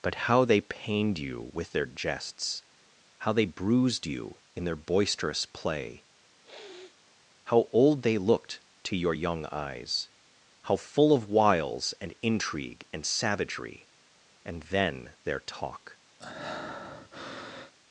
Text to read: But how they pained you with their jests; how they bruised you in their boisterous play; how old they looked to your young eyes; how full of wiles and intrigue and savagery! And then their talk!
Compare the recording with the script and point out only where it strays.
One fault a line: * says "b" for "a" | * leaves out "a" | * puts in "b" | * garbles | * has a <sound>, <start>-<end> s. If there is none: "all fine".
* has a sniff, 6.4-7.0 s
* has a breath, 16.2-17.7 s